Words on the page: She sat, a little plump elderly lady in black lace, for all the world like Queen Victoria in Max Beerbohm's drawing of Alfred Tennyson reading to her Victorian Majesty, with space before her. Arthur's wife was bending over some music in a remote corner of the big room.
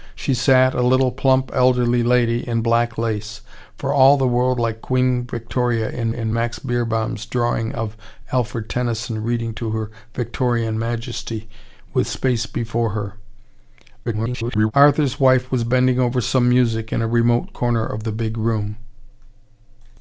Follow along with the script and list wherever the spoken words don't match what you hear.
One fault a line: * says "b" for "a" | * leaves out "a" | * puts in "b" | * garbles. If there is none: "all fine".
* puts in "in"
* garbles